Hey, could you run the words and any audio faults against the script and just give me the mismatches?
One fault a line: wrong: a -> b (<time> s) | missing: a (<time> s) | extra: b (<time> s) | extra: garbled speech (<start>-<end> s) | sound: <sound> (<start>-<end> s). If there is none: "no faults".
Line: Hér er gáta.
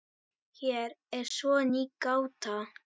extra: svo ný (1.4 s)